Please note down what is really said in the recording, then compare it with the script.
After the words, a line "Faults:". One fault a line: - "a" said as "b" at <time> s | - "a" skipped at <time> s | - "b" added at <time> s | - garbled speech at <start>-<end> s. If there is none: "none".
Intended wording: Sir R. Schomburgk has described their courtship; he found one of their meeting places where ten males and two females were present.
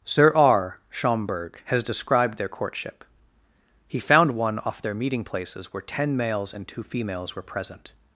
Sir R. Schomburgk has described their courtship; he found one off their meeting places where ten males and two females were present.
Faults:
- "of" said as "off" at 4.6 s